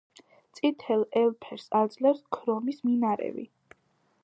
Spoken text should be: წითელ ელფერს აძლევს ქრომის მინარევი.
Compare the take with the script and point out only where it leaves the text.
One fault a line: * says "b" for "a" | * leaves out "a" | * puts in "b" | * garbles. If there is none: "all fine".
all fine